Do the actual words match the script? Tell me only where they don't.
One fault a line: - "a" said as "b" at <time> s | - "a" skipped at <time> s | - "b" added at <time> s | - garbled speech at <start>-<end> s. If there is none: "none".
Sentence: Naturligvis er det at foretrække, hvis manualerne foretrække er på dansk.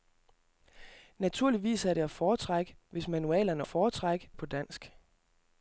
none